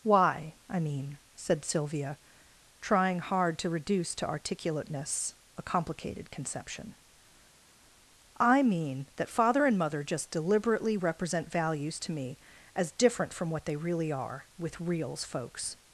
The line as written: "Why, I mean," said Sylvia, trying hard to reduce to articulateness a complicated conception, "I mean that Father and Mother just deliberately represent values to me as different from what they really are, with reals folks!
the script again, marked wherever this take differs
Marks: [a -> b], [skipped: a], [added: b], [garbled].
"Why, I mean," said Sylvia, trying hard to reduce to articulateness a complicated conception, "I mean that Father and Mother just deliberately represent values to me as different from what they really are, with reals folks!